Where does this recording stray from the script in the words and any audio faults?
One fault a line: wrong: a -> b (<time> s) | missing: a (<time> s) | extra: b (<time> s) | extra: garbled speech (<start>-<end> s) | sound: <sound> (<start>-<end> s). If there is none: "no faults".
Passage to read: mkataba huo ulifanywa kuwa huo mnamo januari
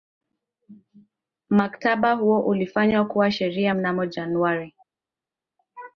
wrong: huo -> sheria (3.3 s)